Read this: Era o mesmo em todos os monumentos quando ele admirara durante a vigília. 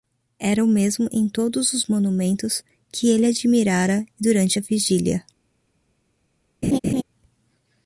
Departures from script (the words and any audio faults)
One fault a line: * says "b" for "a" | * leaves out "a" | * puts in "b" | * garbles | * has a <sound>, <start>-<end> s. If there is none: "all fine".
* says "que" for "quando"
* has a laugh, 6.6-7.0 s